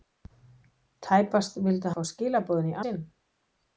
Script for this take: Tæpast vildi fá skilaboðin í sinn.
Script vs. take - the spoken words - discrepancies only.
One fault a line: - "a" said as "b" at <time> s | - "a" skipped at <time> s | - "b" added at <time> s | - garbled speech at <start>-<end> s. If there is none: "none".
none